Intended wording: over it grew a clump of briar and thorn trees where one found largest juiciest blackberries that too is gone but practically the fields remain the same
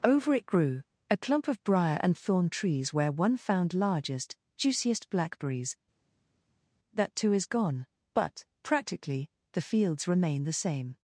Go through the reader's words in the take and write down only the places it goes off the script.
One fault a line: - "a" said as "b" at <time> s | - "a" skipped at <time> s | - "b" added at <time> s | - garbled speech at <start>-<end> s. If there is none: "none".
none